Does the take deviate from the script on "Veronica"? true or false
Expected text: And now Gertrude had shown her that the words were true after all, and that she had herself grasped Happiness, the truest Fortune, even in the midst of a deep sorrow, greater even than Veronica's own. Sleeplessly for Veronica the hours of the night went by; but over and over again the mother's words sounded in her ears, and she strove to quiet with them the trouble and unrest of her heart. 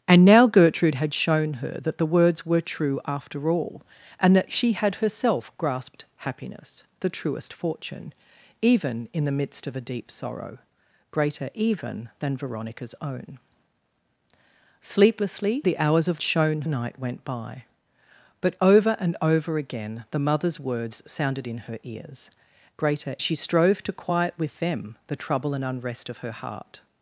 true